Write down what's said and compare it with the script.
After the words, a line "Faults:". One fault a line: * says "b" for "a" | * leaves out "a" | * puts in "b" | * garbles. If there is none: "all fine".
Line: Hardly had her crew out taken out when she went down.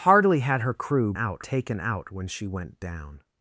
Hardly had her crew out taken out when she went down.
Faults:
all fine